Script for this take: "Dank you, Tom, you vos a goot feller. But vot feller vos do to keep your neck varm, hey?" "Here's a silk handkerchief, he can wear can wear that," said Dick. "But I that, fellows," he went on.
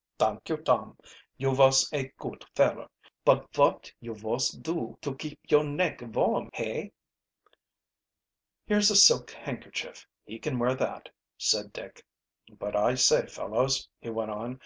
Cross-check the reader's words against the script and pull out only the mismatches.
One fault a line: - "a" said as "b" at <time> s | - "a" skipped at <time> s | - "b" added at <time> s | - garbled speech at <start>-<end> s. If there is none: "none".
- "feller" said as "you" at 4.0 s
- "can wear" skipped at 10.8 s
- "that" said as "say" at 12.9 s